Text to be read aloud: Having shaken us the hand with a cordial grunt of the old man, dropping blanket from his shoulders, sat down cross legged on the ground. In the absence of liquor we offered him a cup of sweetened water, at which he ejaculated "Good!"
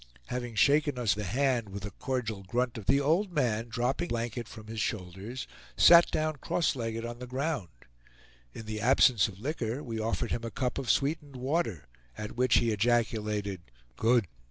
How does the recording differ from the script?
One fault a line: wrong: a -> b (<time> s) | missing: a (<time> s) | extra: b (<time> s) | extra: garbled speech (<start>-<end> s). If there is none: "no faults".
no faults